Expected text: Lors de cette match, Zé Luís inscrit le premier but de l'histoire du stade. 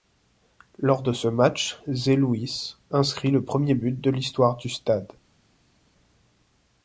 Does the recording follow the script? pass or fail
fail